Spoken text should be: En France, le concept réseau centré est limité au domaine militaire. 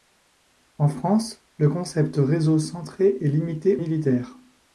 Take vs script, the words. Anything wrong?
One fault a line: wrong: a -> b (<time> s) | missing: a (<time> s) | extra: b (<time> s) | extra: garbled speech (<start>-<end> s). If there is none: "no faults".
missing: au domaine (3.8 s)